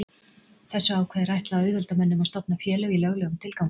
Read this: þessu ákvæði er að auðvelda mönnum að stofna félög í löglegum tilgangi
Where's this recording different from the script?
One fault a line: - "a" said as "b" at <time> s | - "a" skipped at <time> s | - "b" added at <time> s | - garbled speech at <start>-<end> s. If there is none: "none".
- "ætlað" added at 1.4 s